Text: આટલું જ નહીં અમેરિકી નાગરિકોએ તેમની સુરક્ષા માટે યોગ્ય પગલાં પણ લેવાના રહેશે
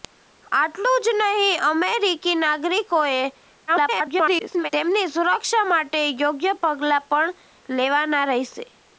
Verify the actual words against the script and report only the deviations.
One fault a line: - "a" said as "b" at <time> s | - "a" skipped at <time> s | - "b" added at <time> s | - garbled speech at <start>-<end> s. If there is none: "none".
- garbled speech at 3.7-4.7 s